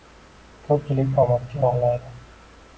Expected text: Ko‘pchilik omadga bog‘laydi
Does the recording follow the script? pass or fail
pass